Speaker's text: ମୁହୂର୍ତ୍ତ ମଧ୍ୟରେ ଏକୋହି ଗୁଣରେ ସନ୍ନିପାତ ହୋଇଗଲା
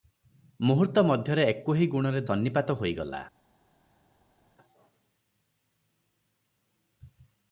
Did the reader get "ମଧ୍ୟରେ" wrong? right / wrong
right